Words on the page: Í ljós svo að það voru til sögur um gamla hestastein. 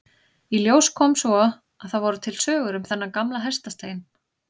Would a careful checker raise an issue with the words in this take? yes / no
yes